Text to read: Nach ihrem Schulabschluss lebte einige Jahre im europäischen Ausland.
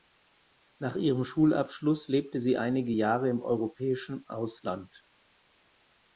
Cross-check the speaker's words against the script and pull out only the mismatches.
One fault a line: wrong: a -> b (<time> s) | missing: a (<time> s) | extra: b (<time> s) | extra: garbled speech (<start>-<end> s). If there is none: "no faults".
extra: sie (2.4 s)